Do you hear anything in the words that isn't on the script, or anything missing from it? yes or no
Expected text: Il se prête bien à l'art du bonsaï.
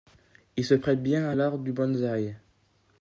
no